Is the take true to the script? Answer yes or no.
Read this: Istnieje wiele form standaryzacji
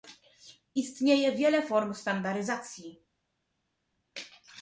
yes